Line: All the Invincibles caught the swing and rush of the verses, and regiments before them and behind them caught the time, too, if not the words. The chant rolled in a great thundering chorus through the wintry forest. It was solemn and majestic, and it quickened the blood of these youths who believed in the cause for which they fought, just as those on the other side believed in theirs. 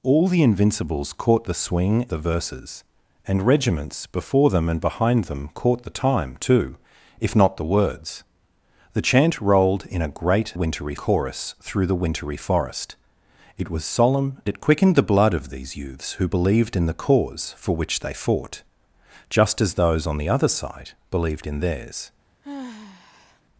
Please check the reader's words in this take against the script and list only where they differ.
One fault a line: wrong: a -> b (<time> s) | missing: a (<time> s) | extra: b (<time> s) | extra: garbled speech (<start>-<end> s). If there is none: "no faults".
missing: and rush of (2.1 s)
wrong: thundering -> wintry (10.5 s)
missing: and majestic and (14.4 s)